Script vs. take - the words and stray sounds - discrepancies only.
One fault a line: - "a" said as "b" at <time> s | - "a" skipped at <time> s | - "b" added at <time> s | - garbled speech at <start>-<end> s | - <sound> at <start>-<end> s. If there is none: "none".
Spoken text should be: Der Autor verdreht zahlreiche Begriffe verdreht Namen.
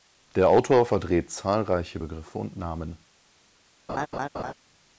- "verdreht" said as "und" at 2.4 s
- laugh at 3.9-4.5 s